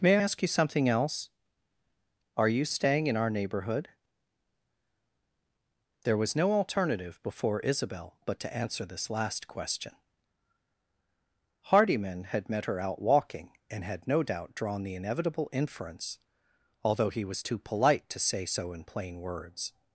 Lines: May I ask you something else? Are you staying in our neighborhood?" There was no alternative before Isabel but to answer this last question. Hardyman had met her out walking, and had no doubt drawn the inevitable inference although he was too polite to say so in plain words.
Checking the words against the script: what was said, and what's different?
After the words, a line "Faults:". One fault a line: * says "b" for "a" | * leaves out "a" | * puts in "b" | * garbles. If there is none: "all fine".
May ask you something else? Are you staying in our neighborhood?" There was no alternative before Isabel but to answer this last question. Hardyman had met her out walking, and had no doubt drawn the inevitable inference although he was too polite to say so in plain words.
Faults:
* leaves out "I"